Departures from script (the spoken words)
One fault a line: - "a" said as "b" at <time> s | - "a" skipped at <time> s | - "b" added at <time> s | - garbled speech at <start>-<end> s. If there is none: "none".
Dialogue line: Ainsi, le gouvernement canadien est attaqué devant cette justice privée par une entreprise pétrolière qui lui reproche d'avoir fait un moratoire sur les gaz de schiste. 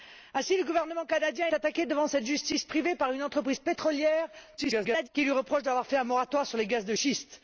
- "est" skipped at 1.5 s
- garbled speech at 4.6-5.1 s